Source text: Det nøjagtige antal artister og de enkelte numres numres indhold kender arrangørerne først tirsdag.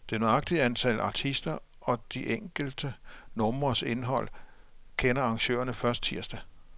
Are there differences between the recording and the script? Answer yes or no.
yes